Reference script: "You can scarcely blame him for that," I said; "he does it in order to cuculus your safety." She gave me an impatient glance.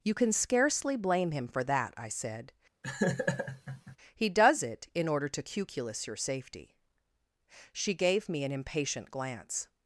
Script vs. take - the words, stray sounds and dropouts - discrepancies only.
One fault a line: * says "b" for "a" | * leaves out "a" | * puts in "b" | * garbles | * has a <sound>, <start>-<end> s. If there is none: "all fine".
* has a laugh, 2.8-4.0 s